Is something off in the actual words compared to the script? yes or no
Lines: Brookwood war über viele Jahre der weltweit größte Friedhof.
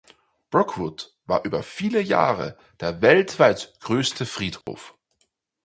no